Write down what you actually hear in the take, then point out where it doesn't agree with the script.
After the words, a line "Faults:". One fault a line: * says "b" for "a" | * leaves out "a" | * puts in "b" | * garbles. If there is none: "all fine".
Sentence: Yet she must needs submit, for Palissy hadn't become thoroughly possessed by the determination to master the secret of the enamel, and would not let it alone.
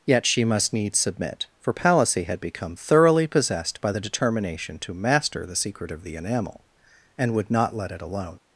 Yet she must needs submit, for Palissy had become thoroughly possessed by the determination to master the secret of the enamel, and would not let it alone.
Faults:
* says "had" for "hadn't"